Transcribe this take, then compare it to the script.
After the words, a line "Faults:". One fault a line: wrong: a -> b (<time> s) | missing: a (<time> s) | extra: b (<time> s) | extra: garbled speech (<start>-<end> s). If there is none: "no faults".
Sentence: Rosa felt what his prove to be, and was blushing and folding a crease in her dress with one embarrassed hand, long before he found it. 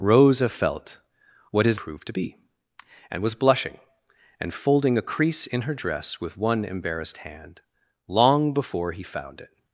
Rosa felt what his prove to be, and was blushing and folding a crease in her dress with one embarrassed hand, long before he found it.
Faults:
no faults